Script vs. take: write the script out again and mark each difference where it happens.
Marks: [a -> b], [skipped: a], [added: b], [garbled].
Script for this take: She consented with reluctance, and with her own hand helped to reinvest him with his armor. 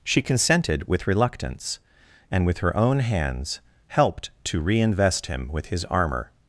She consented with reluctance, and with her own [hand -> hands] helped to reinvest him with his armor.